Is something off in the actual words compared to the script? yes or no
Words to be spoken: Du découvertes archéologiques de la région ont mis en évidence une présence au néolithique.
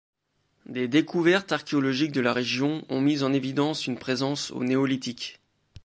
yes